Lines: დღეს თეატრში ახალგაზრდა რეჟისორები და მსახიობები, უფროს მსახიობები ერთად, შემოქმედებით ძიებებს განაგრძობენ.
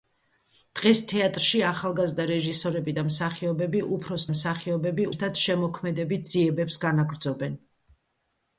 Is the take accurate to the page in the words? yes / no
yes